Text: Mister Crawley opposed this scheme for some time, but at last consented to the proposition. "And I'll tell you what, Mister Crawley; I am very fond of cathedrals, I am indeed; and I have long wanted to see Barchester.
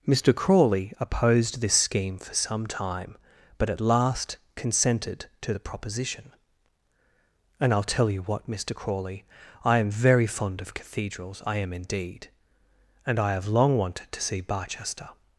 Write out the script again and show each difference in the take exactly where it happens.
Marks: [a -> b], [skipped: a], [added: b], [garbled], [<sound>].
Mister Crawley opposed this scheme for some time, but at last consented to the proposition. "And I'll tell you what, Mister Crawley; I am very fond of cathedrals, I am indeed; and I have long wanted to see Barchester.